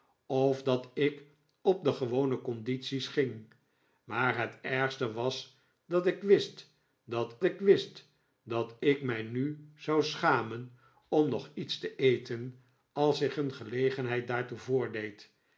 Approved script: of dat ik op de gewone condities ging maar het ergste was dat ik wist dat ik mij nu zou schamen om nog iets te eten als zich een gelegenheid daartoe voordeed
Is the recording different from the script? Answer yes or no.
yes